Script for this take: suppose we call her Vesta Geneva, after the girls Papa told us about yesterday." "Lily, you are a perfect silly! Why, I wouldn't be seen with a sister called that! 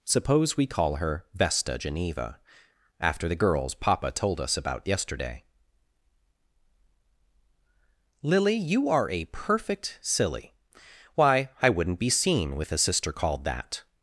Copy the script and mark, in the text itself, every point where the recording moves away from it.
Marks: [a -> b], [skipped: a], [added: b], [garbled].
suppose we call her Vesta Geneva, after the girls Papa told us about yesterday." "Lily, you are a perfect silly! Why, I wouldn't be seen with a sister called that!